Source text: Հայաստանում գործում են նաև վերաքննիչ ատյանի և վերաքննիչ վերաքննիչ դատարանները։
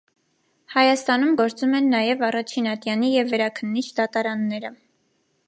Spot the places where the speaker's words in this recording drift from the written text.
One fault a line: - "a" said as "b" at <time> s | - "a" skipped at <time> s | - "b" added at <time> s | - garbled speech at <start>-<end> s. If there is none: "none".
- "վերաքննիչ" said as "առաջին" at 2.3 s
- "վերաքննիչ" skipped at 3.9 s